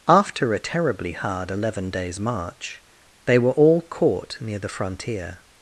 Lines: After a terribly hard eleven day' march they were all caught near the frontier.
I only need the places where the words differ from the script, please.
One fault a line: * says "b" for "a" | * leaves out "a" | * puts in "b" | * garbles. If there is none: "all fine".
* says "days" for "day"